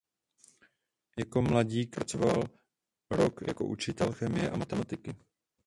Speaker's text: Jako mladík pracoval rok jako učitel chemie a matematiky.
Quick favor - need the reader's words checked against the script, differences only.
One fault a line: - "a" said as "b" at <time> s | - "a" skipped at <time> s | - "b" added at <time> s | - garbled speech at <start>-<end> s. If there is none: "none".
none